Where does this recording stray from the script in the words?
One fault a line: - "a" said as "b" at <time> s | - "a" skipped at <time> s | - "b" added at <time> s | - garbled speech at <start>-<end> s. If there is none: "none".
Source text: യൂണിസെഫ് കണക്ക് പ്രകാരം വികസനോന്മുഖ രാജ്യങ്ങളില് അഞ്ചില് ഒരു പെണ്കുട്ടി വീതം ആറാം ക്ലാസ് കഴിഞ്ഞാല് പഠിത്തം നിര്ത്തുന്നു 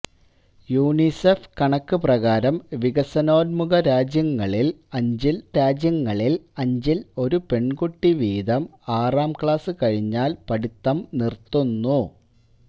- "രാജ്യങ്ങളില് അഞ്ചില്" added at 5.6 s